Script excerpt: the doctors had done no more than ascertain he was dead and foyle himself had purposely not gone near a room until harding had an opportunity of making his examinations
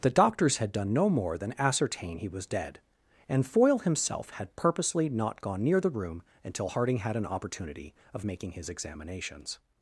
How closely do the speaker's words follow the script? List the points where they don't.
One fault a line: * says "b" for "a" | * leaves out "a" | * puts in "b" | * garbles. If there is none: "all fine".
* says "the" for "a"